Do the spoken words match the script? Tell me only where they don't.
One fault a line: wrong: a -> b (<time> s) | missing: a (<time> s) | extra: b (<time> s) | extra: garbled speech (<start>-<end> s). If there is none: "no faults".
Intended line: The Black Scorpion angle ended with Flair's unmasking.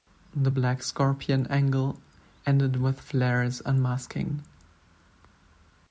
no faults